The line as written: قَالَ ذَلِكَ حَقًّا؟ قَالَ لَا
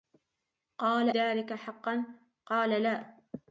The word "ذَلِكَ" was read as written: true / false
true